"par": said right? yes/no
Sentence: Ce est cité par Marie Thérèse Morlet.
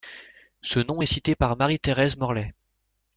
yes